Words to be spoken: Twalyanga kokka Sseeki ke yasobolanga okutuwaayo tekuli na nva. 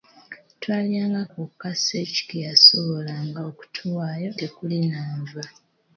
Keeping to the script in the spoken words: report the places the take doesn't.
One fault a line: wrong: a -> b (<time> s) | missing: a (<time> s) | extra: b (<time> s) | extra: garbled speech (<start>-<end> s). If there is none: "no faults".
no faults